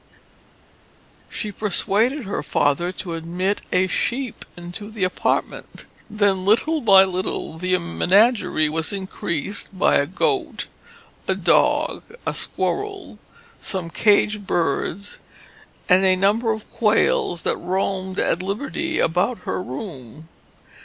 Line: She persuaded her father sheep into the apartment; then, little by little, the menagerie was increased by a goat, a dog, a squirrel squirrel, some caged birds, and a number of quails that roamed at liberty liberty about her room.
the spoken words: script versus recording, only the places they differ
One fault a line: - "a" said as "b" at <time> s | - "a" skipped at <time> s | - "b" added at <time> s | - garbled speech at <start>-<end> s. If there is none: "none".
- "to admit a" added at 2.9 s
- "squirrel" skipped at 13.2 s
- "liberty" skipped at 19.0 s